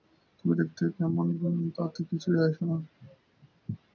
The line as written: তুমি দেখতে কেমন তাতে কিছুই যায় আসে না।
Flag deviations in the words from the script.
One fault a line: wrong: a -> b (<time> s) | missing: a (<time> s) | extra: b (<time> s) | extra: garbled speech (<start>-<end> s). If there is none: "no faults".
no faults